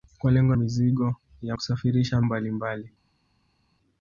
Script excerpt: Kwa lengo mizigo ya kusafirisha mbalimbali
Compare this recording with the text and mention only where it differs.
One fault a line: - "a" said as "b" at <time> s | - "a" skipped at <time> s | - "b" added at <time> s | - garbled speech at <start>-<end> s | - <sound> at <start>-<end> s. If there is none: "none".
none